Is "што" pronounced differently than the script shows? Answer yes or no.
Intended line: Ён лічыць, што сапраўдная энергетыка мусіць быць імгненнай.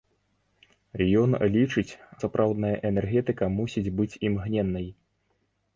yes